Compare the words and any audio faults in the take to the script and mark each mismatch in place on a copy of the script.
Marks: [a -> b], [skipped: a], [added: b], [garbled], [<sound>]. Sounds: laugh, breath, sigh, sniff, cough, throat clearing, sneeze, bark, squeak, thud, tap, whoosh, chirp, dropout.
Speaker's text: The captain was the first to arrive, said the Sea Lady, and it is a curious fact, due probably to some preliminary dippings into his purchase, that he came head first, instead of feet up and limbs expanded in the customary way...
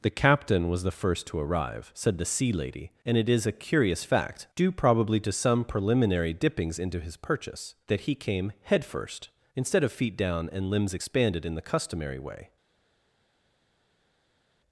The captain was the first to arrive, said the Sea Lady, and it is a curious fact, due probably to some preliminary dippings into his purchase, that he came head first, instead of feet [up -> down] and limbs expanded in the customary way...